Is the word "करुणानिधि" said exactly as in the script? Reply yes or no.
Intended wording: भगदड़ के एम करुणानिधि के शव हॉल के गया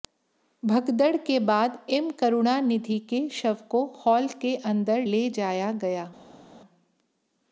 yes